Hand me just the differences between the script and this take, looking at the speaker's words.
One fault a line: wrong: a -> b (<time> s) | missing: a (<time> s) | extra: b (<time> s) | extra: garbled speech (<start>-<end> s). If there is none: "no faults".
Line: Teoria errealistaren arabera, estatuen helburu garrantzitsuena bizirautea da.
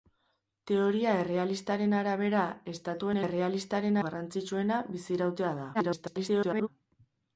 wrong: helburu -> errealistaren (3.3 s)
extra: garbled speech (5.7-6.7 s)